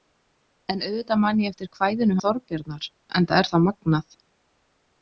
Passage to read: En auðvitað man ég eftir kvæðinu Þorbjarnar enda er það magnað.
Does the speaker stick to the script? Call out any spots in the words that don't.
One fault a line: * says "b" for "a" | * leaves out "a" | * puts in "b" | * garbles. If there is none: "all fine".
all fine